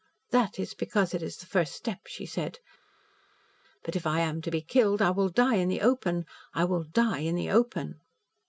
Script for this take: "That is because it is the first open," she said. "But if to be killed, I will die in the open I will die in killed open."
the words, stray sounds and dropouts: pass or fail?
fail